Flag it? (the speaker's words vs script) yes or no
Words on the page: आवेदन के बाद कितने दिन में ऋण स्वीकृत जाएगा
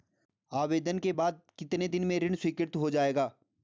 yes